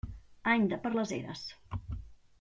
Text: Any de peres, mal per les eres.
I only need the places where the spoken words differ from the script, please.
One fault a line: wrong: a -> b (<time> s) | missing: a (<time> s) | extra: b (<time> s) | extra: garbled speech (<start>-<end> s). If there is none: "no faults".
missing: peres mal (0.8 s)